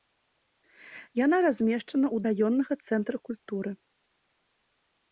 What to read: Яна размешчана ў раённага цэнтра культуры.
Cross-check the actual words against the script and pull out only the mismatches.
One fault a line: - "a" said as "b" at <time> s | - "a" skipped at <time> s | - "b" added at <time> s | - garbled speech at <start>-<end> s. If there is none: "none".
none